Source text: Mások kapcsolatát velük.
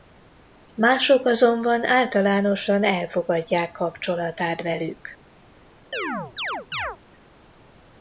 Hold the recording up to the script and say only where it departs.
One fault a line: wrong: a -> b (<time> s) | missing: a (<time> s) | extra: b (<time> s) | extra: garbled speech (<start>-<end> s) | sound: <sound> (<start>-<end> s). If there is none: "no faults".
extra: azonban általánosan elfogadják (1.2 s)
sound: chirp (5.9-7.0 s)